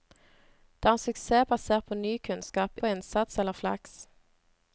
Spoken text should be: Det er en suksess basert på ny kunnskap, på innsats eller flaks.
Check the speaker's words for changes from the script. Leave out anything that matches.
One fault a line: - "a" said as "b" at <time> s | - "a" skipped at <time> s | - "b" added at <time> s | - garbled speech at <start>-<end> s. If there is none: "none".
none